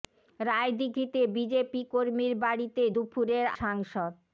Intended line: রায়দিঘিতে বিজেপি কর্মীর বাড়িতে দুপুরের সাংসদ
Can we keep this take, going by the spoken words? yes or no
yes